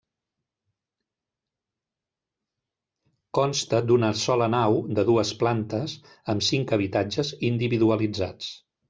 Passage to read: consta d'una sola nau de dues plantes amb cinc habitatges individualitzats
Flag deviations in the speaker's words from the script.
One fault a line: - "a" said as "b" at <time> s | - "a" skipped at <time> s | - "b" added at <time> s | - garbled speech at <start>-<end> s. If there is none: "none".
none